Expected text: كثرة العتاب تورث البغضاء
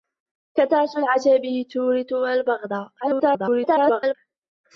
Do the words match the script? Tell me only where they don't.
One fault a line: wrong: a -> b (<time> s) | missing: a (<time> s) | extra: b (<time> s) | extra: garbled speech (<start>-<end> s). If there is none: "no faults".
extra: garbled speech (3.0-4.2 s)